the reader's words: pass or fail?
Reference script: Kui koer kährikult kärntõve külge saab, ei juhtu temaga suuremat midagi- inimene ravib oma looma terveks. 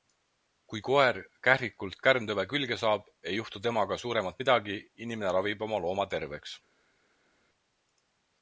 pass